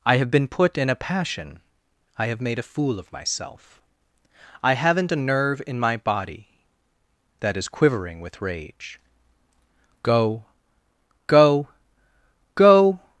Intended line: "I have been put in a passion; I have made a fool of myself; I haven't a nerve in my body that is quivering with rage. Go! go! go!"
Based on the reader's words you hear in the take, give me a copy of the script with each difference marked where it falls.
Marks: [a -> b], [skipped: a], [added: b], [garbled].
"I have been put in a passion; I have made a fool of myself; I haven't a nerve in my body that is quivering with rage. Go! go! go!"